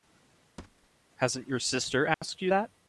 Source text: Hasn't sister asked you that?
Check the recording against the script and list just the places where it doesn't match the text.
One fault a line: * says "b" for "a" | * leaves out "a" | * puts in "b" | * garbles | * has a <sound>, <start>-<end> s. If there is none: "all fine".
* has a thud, 0.6-0.9 s
* puts in "your"
* has a dropout, 2.1-2.2 s